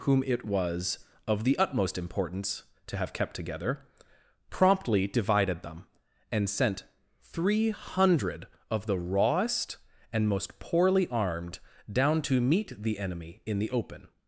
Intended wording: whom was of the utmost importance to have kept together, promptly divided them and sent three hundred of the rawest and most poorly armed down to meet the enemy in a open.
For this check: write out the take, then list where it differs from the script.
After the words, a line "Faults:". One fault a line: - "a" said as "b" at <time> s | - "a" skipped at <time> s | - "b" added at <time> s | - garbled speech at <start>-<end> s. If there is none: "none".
whom it was of the utmost importance to have kept together, promptly divided them and sent three hundred of the rawest and most poorly armed down to meet the enemy in the open.
Faults:
- "it" added at 0.2 s
- "a" said as "the" at 13.6 s